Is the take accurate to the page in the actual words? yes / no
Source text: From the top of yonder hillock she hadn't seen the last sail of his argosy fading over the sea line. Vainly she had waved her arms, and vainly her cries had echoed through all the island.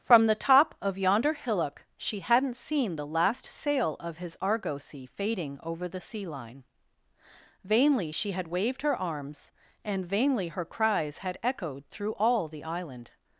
yes